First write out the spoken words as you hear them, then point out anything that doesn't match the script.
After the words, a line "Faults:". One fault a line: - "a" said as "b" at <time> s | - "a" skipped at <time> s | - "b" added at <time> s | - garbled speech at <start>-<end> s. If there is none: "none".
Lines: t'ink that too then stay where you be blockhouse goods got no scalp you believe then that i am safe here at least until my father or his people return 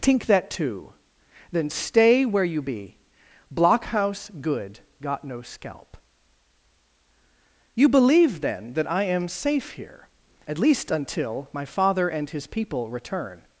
t'ink that too then stay where you be blockhouse good got no scalp you believe then that i am safe here at least until my father and his people return
Faults:
- "goods" said as "good" at 4.4 s
- "or" said as "and" at 12.1 s